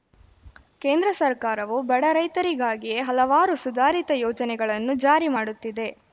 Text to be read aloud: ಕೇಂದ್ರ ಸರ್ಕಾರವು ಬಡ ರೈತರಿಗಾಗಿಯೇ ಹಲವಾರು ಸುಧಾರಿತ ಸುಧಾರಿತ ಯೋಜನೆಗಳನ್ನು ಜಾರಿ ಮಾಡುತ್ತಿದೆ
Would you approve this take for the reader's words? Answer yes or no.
no